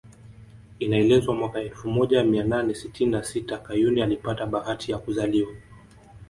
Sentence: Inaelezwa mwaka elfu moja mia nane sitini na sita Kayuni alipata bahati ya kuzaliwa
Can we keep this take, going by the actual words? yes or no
yes